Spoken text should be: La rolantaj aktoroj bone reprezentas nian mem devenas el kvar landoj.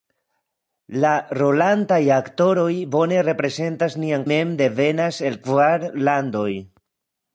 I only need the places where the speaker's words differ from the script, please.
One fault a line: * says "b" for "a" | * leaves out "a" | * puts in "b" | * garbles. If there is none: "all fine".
all fine